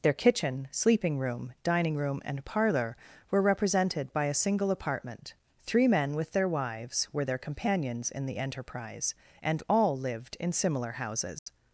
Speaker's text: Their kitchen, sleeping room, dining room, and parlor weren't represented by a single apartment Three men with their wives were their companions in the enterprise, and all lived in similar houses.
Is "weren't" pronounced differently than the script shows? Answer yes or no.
yes